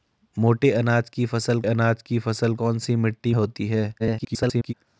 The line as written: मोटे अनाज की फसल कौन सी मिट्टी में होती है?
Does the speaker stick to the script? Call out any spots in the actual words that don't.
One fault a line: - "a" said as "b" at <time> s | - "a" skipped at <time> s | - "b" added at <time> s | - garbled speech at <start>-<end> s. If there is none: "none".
- "अनाज की फसल" added at 1.6 s
- "में" skipped at 3.3 s
- garbled speech at 4.0-4.7 s